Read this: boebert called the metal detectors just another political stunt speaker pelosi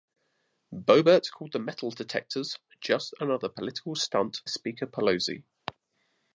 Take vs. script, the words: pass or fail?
pass